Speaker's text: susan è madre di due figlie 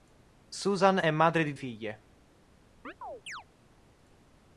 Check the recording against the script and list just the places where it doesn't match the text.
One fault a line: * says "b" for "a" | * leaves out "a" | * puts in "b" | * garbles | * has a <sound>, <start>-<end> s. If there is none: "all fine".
* leaves out "due"
* has a chirp, 2.8-3.4 s